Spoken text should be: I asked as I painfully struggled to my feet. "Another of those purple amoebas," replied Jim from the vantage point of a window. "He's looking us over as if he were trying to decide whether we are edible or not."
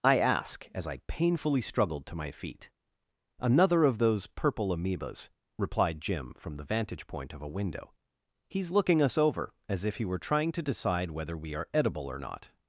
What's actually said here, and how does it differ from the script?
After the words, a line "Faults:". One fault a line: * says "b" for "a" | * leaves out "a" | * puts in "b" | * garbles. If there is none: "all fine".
I ask as I painfully struggled to my feet. "Another of those purple amoebas," replied Jim from the vantage point of a window. "He's looking us over as if he were trying to decide whether we are edible or not."
Faults:
* says "ask" for "asked"